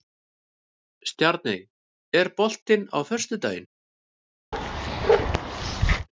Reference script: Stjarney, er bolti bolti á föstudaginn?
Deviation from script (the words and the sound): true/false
true